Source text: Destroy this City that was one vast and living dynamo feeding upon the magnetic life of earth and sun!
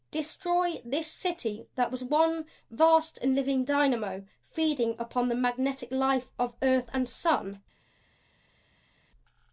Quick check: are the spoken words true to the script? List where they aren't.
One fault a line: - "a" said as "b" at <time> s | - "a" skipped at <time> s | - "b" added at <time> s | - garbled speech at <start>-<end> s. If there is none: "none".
none